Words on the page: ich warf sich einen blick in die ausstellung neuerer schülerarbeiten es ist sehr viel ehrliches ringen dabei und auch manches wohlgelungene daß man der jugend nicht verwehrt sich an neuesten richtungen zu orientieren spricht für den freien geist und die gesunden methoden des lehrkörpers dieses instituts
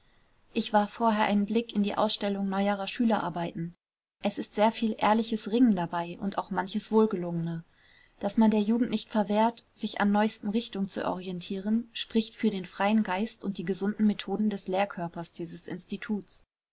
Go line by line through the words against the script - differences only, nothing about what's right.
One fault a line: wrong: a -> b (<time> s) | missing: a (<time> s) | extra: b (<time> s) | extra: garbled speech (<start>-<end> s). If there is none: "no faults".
wrong: sich -> vorher (0.9 s)